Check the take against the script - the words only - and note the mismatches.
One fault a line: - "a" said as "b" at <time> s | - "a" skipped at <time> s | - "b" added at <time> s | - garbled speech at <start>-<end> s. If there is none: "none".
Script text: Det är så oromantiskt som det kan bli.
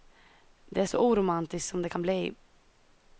none